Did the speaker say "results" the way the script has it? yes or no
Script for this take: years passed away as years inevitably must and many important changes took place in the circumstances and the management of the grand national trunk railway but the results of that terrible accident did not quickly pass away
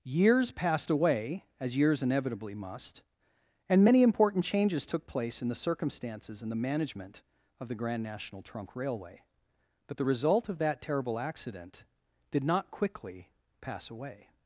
no